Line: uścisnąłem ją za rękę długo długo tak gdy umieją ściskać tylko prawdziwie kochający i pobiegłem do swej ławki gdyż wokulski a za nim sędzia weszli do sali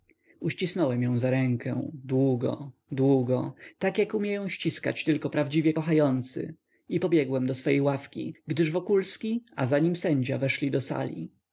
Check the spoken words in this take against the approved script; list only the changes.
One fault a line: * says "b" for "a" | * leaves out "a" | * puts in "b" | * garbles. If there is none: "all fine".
* says "jak" for "gdy"